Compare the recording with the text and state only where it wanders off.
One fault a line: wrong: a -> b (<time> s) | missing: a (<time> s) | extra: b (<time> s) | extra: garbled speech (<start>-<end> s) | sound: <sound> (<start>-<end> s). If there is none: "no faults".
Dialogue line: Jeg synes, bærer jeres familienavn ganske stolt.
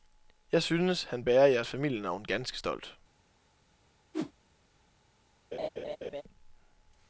extra: han (1.0 s)
sound: whoosh (4.1-4.3 s)
sound: laugh (5.5-6.2 s)